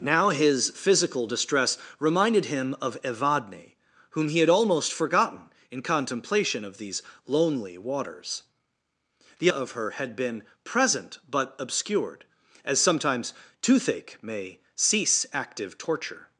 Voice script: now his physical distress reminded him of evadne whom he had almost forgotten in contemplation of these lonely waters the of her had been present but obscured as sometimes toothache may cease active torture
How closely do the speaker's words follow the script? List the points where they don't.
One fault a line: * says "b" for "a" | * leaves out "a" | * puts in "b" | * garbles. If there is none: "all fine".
all fine